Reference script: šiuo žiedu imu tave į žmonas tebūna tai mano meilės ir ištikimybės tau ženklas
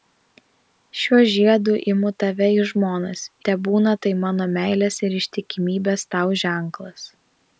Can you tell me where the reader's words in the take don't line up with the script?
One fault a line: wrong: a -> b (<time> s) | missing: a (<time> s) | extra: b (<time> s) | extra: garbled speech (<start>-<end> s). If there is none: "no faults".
no faults